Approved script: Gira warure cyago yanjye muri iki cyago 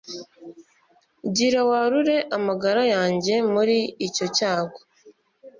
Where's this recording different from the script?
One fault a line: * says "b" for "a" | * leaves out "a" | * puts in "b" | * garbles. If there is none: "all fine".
* says "amagara" for "cyago"
* says "icyo" for "iki"